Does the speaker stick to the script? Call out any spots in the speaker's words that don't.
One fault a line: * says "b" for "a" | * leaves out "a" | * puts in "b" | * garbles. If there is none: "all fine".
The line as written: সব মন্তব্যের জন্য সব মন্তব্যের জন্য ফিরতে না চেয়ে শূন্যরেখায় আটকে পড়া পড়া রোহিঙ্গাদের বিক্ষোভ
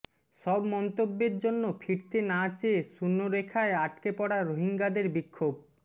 * leaves out "সব মন্তব্যের জন্য"
* leaves out "পড়া"